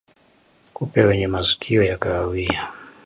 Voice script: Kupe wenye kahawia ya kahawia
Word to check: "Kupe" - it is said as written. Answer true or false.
true